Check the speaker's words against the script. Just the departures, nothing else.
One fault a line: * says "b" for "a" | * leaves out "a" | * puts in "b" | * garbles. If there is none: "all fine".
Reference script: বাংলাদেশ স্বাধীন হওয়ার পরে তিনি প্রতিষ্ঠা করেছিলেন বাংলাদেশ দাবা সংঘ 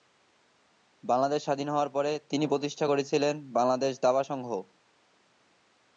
all fine